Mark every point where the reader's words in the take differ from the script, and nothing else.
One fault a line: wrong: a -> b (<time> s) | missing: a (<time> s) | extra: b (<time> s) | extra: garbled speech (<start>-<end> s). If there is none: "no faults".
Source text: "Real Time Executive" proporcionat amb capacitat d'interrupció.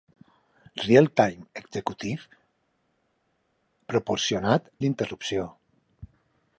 missing: amb capacitat (4.7 s)